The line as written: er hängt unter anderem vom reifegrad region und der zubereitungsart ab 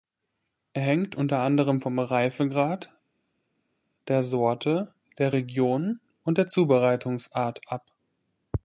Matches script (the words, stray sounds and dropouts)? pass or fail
fail